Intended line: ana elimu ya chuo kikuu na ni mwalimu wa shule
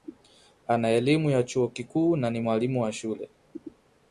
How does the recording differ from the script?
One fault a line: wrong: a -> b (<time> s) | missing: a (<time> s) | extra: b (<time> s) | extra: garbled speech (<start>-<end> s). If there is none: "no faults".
no faults